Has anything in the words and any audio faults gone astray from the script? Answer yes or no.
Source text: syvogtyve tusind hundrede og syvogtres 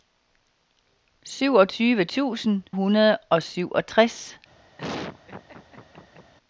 yes